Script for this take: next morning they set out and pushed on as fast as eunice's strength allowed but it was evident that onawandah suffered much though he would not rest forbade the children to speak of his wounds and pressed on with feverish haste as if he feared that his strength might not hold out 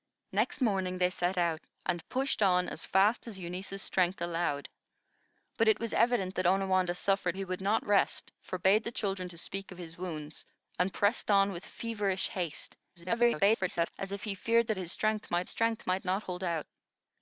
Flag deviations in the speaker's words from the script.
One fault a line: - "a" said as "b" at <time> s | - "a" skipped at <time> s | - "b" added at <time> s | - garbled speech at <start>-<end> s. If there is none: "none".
- "much though" skipped at 7.4 s
- garbled speech at 13.0-13.9 s
- "strength might" added at 15.5 s